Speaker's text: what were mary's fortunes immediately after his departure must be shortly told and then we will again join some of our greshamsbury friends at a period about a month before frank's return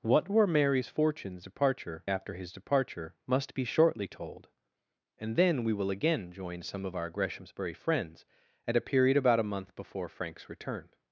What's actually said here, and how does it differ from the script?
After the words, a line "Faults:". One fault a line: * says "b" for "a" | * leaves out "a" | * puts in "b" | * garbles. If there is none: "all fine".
what were mary's fortunes departure after his departure must be shortly told and then we will again join some of our greshamsbury friends at a period about a month before frank's return
Faults:
* says "departure" for "immediately"